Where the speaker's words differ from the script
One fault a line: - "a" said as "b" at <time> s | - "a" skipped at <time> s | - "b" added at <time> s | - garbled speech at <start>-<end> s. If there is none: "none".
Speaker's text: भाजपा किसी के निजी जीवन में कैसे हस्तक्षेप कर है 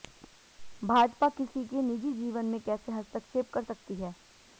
- "सकती" added at 3.6 s